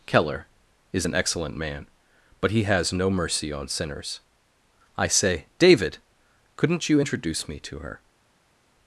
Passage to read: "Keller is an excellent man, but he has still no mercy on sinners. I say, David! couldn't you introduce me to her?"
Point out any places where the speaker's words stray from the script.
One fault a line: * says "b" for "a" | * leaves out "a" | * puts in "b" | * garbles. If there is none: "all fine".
* leaves out "still"